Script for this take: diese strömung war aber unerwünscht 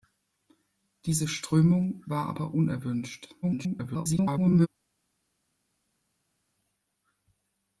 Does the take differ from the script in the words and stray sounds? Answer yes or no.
yes